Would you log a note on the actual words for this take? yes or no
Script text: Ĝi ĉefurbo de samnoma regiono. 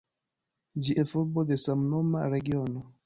no